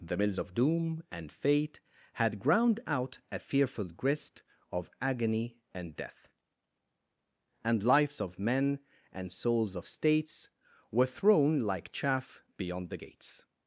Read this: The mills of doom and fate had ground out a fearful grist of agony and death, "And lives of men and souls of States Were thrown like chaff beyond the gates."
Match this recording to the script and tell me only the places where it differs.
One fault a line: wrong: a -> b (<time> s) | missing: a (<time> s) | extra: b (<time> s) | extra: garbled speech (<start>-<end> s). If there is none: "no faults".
no faults